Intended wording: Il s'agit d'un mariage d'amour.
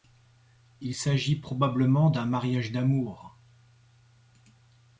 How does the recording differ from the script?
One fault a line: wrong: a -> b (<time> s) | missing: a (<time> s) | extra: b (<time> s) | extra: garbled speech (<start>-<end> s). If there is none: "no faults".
extra: probablement (1.4 s)